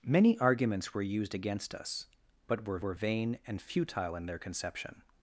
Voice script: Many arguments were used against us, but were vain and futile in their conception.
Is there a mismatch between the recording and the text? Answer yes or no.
yes